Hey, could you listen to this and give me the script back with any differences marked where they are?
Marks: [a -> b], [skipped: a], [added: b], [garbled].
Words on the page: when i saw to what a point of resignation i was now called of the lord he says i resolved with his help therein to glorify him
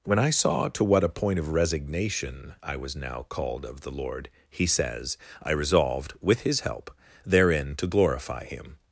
when i saw to what a point of resignation i was now called of the lord he says i resolved with his help therein to glorify him